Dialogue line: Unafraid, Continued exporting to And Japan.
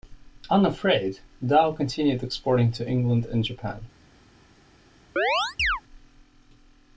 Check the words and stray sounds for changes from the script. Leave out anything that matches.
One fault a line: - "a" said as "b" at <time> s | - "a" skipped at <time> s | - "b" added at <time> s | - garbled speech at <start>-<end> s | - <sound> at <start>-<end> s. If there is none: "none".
- "Dow" added at 1.4 s
- "England" added at 2.9 s
- chirp at 5.2-5.8 s